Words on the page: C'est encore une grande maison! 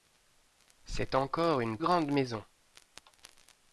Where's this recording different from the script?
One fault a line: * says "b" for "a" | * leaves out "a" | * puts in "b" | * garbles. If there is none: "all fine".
all fine